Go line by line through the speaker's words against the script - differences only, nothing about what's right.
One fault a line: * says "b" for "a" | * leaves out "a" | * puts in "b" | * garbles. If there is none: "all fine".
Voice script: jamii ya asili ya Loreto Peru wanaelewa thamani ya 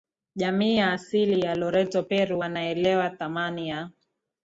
all fine